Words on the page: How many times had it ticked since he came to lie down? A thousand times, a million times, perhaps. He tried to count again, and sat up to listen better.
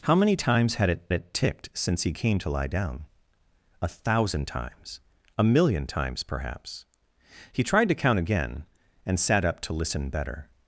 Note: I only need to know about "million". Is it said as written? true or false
true